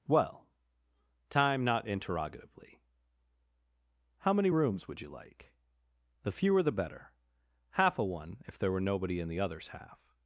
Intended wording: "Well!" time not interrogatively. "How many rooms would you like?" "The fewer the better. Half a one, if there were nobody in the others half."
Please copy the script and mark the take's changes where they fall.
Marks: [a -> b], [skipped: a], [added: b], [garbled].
"Well!" time not interrogatively. "How many rooms would you like?" "The fewer the better. Half a one, if there were nobody in the others half."